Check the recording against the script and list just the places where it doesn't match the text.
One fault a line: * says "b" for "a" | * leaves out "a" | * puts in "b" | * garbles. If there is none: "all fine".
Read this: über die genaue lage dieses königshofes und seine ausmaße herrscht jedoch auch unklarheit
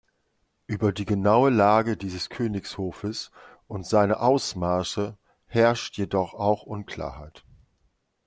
all fine